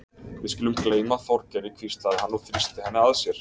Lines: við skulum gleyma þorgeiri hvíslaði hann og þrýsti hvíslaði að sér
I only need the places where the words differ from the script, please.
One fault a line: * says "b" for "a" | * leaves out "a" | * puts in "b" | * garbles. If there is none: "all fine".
* says "henni" for "hvíslaði"